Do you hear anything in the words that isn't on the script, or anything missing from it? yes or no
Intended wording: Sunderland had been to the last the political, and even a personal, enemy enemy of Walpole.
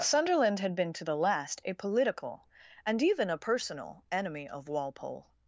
yes